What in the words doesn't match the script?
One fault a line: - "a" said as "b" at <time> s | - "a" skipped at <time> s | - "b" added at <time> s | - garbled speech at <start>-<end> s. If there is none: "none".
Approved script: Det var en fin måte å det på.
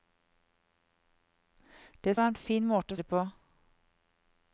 none